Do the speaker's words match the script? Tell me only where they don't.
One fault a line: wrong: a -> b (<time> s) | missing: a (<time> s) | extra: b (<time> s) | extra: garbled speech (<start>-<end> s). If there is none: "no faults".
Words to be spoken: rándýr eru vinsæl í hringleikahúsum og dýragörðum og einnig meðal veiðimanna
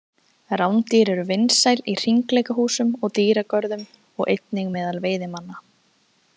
no faults